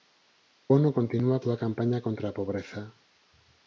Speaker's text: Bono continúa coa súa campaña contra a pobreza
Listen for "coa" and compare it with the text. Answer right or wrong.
wrong